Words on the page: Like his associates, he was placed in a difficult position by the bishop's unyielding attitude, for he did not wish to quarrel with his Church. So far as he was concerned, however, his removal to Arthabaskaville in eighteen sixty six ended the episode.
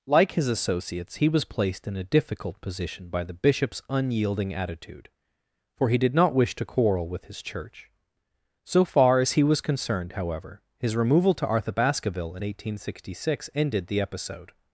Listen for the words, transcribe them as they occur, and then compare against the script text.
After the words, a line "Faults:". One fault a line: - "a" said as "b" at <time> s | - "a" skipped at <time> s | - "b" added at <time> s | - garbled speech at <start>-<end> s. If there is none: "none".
Like his associates, he was placed in a difficult position by the bishop's unyielding attitude, for he did not wish to quarrel with his Church. So far as he was concerned, however, his removal to Arthabaskaville in eighteen sixty six ended the episode.
Faults:
none